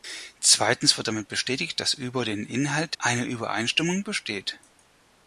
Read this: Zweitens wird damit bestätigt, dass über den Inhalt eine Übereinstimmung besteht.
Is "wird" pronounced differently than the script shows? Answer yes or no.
no